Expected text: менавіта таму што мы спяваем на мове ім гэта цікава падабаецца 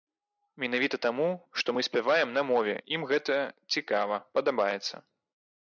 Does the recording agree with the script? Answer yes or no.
yes